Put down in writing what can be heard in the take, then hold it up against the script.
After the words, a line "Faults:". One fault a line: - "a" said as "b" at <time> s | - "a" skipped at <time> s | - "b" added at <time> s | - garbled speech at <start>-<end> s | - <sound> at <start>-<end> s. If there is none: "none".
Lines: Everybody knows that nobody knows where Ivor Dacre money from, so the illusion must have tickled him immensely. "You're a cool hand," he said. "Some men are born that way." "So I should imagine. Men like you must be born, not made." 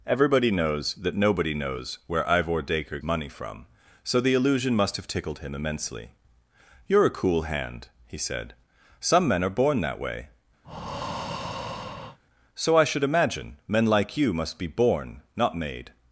Everybody knows that nobody knows where Ivor Dacre money from, so the illusion must have tickled him immensely. "You're a cool hand," he said. "Some men are born that way." "So I should imagine. Men like you must be born, not made."
Faults:
- breath at 10.6-12.2 s